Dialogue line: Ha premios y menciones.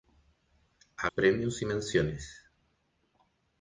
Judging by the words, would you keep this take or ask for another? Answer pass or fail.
pass